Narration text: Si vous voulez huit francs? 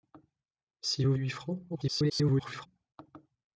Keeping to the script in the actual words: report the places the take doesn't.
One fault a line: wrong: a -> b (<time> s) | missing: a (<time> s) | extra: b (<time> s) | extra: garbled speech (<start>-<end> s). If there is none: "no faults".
missing: voulez (1.1 s)
extra: garbled speech (1.7-2.7 s)